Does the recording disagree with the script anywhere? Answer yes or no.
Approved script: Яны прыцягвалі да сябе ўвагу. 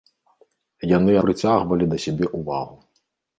no